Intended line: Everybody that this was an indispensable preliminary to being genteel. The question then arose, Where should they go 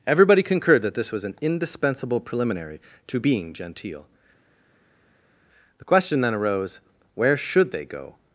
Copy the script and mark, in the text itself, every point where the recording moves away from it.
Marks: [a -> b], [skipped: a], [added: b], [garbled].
Everybody [added: concurred] that this was an indispensable preliminary to being genteel. The question then arose, Where should they go